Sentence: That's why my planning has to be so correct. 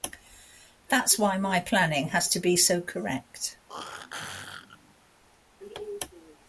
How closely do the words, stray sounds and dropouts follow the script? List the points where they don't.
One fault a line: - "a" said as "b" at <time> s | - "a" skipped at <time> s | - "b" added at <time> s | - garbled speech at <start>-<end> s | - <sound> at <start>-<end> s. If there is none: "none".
- throat clearing at 3.7-5.0 s